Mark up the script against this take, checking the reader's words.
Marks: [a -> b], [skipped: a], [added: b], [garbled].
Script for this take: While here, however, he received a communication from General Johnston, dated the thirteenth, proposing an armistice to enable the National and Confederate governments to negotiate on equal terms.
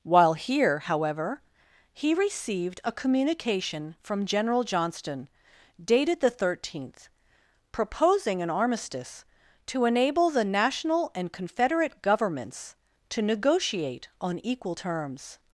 While here, however, he received a communication from General Johnston, dated the thirteenth, proposing an armistice to enable the National and Confederate governments to negotiate on equal terms.